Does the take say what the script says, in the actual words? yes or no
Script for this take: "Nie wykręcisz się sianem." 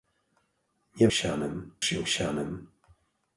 no